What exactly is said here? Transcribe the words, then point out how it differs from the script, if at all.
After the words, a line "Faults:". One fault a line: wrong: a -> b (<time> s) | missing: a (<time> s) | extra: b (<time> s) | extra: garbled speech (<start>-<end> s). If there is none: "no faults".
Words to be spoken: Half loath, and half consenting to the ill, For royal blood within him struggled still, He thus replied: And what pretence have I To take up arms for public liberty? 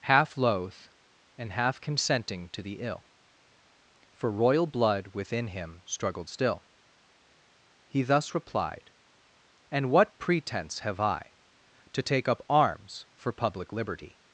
Half loath, and half consenting to the ill, For royal blood within him struggled still, He thus replied: And what pretence have I To take up arms for public liberty?
Faults:
no faults